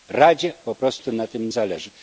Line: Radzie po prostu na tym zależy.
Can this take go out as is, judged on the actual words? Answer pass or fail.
pass